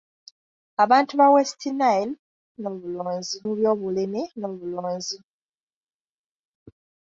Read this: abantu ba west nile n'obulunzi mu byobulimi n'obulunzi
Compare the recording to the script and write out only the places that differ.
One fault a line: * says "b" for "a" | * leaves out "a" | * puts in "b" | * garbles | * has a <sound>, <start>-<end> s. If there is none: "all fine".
all fine